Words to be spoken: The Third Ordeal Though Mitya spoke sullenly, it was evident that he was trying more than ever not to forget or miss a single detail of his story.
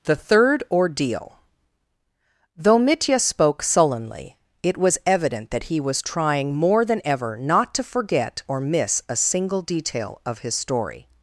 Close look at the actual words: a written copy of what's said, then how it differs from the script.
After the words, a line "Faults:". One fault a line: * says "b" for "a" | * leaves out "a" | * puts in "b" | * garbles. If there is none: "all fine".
The Third Ordeal Though Mitya spoke sullenly, it was evident that he was trying more than ever not to forget or miss a single detail of his story.
Faults:
all fine